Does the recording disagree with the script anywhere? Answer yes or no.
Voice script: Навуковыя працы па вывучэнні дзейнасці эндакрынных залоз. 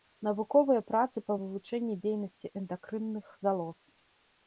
no